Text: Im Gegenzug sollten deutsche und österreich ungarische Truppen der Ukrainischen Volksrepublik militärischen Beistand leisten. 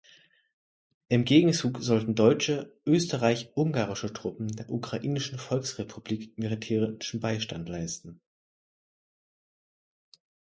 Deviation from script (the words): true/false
true